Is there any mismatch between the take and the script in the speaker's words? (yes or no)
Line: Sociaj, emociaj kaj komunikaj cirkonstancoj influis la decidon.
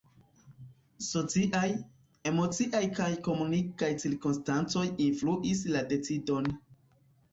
no